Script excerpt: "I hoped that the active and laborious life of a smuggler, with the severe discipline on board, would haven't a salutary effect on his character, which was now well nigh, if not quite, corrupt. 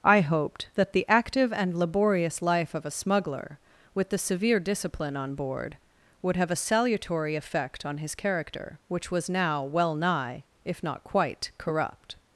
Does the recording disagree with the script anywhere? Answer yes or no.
yes